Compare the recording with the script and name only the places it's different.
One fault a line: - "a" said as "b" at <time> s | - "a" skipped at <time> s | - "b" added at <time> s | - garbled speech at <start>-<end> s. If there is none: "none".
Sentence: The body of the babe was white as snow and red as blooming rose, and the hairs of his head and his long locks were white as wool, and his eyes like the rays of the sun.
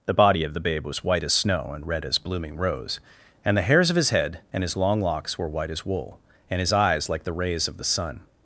none